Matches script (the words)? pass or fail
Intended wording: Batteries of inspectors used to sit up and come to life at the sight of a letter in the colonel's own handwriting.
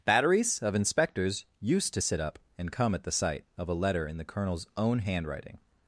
fail